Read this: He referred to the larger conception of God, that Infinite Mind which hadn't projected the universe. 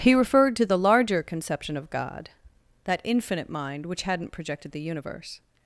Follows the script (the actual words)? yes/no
yes